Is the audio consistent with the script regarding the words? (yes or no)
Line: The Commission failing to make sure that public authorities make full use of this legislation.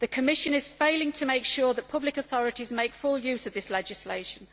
no